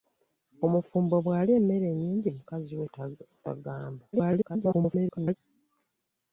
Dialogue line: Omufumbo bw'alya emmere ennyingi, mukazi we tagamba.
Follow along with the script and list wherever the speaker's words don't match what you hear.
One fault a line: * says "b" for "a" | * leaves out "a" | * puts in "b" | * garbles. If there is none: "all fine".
* garbles